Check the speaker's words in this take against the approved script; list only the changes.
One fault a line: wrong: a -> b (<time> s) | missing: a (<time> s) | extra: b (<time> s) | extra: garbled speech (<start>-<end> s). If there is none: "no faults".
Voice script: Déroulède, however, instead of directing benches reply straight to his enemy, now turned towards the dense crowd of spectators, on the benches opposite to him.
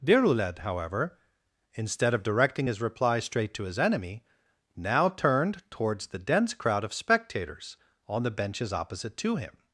wrong: benches -> his (2.7 s)